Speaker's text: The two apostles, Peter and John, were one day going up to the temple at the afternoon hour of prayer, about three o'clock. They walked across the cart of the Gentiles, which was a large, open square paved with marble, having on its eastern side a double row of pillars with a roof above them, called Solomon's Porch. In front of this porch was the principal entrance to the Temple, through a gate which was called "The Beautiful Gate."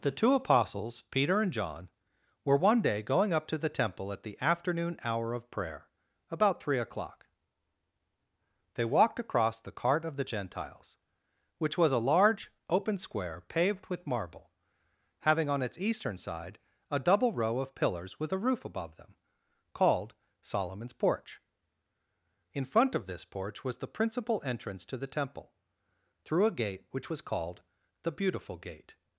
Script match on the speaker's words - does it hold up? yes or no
yes